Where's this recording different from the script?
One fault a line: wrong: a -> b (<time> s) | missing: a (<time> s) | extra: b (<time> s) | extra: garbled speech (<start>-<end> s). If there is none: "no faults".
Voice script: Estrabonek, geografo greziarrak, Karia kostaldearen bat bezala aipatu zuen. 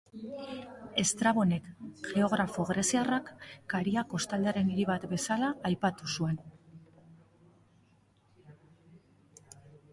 extra: hiri (4.7 s)